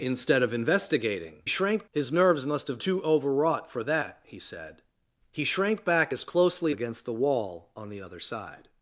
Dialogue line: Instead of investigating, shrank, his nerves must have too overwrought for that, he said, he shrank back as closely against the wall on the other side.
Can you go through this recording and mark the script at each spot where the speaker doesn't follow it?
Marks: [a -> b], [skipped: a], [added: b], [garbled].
Instead of investigating, shrank, his nerves must have too overwrought for that, he said, he shrank back as closely against the wall on the other side.